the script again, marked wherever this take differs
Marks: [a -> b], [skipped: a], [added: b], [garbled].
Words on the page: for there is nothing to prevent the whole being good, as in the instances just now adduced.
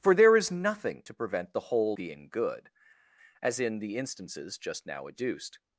for there is nothing to prevent the whole being good, as in the instances just now adduced.